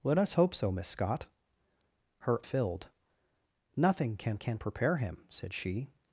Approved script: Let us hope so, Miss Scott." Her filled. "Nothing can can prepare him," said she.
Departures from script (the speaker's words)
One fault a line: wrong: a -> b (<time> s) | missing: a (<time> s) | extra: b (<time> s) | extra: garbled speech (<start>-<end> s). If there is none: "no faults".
no faults